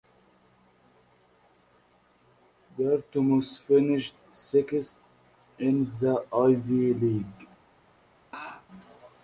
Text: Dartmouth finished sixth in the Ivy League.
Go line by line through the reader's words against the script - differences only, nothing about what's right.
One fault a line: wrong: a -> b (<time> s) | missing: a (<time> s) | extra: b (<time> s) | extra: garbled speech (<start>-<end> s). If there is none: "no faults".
no faults